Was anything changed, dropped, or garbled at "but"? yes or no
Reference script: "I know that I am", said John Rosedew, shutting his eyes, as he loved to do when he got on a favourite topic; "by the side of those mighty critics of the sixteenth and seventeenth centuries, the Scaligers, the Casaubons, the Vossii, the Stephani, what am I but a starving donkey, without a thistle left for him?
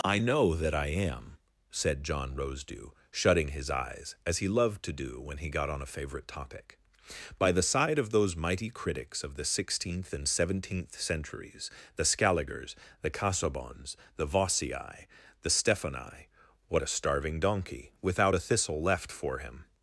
yes